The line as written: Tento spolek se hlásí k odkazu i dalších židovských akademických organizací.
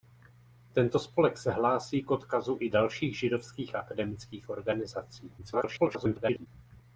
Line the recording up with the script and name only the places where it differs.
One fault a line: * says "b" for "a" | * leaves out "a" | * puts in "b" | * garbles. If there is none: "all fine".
* garbles